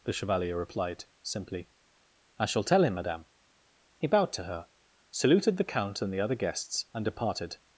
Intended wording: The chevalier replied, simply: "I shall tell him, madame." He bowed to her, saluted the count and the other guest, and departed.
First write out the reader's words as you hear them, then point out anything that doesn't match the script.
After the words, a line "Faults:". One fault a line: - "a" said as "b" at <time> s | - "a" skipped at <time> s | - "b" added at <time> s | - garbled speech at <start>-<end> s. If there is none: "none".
The chevalier replied, simply: "I shall tell him, madame." He bowed to her, saluted the count and the other guests, and departed.
Faults:
- "guest" said as "guests" at 6.3 s